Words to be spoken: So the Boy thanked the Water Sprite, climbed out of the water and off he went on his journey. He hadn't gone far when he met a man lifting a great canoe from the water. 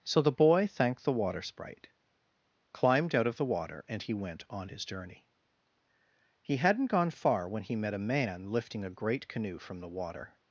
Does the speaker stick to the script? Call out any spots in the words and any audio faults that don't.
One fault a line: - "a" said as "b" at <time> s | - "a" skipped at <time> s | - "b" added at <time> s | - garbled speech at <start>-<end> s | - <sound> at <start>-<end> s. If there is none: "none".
- "off" skipped at 4.0 s